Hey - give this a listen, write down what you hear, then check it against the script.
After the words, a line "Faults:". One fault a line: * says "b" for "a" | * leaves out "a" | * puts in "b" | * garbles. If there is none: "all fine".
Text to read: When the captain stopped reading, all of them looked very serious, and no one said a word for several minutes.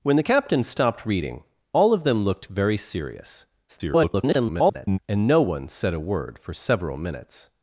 When the captain stopped reading, all of them looked very serious, [garbled] and no one said a word for several minutes.
Faults:
* garbles